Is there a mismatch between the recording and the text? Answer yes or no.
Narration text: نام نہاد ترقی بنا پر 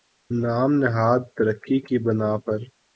yes